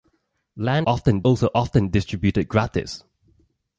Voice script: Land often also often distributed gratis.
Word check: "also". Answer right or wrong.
right